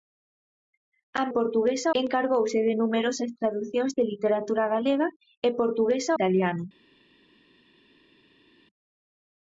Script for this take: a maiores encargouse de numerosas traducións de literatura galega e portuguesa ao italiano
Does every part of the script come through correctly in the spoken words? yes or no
no